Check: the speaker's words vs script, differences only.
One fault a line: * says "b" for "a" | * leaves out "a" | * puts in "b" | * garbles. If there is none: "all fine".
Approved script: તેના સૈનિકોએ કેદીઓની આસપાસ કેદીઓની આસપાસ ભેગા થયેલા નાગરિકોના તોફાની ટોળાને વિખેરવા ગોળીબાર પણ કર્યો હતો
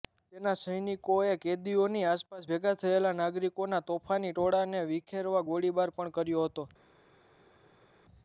* leaves out "કેદીઓની આસપાસ"